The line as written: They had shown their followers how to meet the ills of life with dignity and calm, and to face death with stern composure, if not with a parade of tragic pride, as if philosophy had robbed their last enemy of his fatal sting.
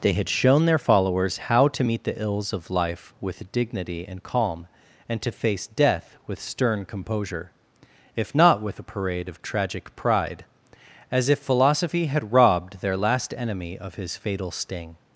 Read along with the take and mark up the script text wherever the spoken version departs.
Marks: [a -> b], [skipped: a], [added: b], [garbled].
They had shown their followers how to meet the ills of life with dignity and calm, and to face death with stern composure, if not with a parade of tragic pride, as if philosophy had robbed their last enemy of his fatal sting.